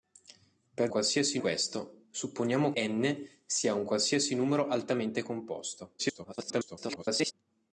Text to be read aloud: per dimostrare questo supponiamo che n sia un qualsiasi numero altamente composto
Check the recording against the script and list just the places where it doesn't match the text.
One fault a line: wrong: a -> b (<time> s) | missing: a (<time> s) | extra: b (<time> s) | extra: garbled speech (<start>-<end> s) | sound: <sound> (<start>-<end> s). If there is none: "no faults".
wrong: dimostrare -> qualsiasi (0.9 s)
missing: che (2.7 s)
extra: garbled speech (6.0-7.3 s)